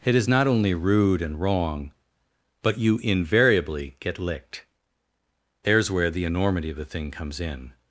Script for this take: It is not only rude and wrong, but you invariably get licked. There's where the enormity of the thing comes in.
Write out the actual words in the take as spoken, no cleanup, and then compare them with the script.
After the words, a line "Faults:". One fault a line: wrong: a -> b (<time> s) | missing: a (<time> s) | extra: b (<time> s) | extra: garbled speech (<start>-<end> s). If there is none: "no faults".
It is not only rude and wrong, but you invariably get licked. There's where the enormity of the thing comes in.
Faults:
no faults